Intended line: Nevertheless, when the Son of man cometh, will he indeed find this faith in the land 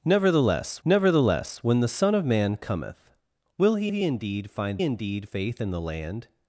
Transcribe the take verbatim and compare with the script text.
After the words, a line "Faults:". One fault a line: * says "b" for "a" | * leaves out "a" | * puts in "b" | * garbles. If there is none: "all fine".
Nevertheless nevertheless, when the Son of man cometh, will he he indeed find indeed faith in the land
Faults:
* puts in "nevertheless"
* puts in "he"
* says "indeed" for "this"